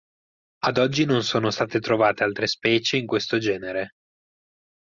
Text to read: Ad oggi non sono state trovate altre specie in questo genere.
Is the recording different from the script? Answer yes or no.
no